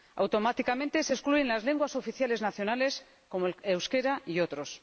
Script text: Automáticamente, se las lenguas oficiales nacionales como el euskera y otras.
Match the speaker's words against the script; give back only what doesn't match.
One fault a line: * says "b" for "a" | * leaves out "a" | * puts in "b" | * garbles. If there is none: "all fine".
* puts in "excluyen"